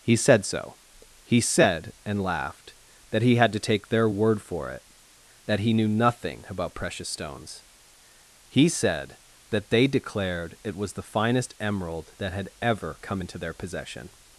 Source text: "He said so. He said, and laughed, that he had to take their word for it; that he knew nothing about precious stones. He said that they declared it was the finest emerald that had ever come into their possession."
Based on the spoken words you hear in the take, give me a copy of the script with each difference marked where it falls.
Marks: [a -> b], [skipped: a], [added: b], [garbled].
"He said so. He said, and laughed, that he had to take their word for it; that he knew nothing about precious stones. He said that they declared it was the finest emerald that had ever come into their possession."